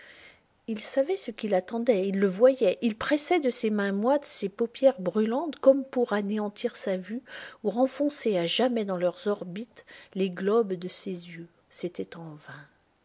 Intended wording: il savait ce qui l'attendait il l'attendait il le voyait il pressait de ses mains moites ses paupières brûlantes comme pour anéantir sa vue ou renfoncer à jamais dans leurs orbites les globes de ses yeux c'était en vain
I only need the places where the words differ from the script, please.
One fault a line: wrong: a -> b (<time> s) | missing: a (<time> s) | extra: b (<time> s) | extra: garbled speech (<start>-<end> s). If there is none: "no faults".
missing: l'attendait il (2.2 s)